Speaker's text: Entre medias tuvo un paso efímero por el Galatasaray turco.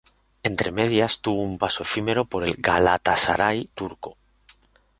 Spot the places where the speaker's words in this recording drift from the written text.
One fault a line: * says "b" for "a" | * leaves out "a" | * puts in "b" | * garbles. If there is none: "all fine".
all fine